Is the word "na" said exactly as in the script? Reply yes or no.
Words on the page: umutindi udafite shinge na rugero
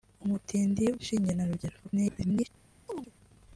yes